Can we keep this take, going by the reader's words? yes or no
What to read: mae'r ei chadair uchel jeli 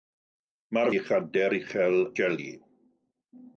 yes